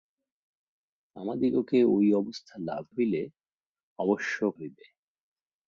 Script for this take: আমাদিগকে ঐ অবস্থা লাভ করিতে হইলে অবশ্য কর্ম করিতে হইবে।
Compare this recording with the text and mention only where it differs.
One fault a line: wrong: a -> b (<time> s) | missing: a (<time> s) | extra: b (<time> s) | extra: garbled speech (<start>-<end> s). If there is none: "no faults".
missing: করিতে (2.8 s)
missing: কর্ম করিতে (4.3 s)